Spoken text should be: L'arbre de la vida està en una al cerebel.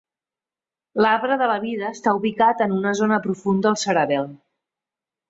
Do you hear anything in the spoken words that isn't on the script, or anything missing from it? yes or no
yes